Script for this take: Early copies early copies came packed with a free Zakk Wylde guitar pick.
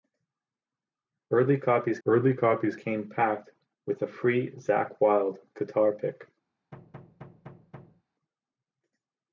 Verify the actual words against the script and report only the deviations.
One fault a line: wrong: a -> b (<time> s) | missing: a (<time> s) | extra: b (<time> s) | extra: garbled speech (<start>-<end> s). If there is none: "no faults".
no faults